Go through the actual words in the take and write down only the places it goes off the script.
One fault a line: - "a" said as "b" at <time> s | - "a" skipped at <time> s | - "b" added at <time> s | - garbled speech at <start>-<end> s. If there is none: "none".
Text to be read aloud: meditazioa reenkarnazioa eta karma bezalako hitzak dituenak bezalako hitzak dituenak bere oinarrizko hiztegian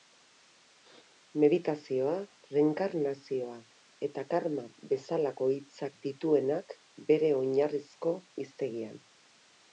- "bezalako hitzak dituenak" skipped at 6.7 s